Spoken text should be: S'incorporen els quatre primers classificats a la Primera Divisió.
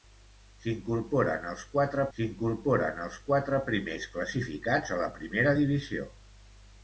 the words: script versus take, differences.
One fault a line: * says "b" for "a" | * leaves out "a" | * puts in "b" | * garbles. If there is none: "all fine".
* puts in "s'incorporen els quatre"